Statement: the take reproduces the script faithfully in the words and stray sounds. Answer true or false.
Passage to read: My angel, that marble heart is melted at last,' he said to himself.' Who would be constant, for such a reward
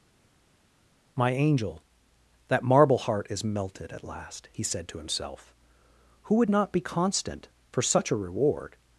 false